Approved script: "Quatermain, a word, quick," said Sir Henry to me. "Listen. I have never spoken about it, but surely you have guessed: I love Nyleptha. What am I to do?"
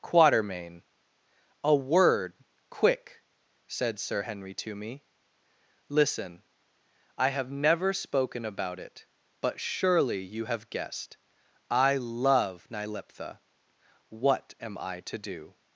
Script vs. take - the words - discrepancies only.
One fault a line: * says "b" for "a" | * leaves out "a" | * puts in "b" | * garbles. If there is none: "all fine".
all fine